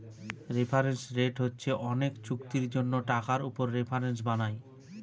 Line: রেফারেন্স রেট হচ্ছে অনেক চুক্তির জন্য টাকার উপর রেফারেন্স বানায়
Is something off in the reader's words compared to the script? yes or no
no